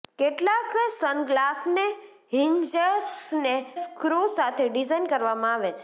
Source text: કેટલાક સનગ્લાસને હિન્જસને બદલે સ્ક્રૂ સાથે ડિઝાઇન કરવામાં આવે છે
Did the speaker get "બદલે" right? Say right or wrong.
wrong